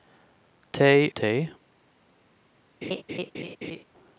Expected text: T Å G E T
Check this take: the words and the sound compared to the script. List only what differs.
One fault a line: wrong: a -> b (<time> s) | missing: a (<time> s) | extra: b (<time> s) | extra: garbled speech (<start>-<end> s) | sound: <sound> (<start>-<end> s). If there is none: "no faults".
missing: Å G E (1.1 s)
sound: laugh (2.8-3.8 s)